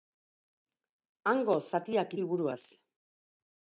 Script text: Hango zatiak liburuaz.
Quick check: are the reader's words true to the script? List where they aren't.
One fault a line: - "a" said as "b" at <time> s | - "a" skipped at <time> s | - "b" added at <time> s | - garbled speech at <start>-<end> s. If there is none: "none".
none